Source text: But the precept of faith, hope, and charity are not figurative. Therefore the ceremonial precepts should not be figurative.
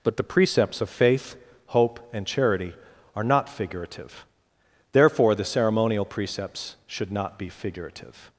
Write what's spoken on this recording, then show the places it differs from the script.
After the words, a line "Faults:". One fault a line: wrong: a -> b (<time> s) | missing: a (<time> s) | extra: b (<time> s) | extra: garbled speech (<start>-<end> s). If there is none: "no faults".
But the precepts of faith, hope, and charity are not figurative. Therefore the ceremonial precepts should not be figurative.
Faults:
wrong: precept -> precepts (0.2 s)